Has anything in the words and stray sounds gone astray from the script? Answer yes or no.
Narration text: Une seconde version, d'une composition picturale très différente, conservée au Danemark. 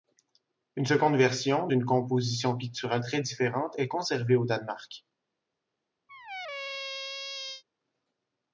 yes